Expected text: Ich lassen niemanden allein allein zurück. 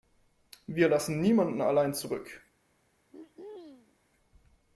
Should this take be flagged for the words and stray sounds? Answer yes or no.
yes